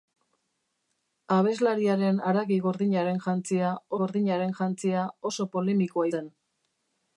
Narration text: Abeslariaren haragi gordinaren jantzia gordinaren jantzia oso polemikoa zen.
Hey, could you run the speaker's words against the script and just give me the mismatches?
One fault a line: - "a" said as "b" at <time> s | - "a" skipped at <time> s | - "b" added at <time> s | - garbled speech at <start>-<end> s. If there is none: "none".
none